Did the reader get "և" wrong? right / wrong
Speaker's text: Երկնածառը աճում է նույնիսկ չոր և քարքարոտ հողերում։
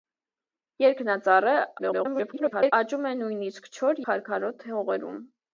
wrong